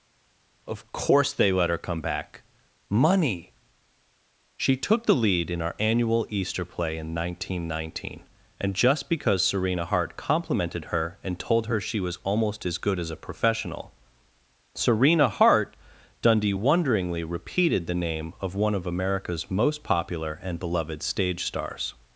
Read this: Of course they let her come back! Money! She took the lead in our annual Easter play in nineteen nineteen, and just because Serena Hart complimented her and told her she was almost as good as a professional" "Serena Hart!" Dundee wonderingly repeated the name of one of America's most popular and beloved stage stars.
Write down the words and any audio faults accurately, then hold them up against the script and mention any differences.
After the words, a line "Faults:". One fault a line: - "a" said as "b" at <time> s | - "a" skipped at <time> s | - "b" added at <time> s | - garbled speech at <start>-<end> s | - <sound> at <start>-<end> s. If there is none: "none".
Of course they let her come back! Money! She took the lead in our annual Easter play in nineteen nineteen, and just because Serena Hart complimented her and told her she was almost as good as a professional" "Serena Hart!" Dundee wonderingly repeated the name of one of America's most popular and beloved stage stars.
Faults:
none